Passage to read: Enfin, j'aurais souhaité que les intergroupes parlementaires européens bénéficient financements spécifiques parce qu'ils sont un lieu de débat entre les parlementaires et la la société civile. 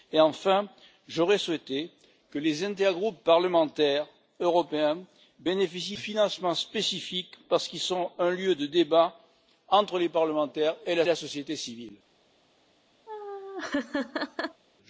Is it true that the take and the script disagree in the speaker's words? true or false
false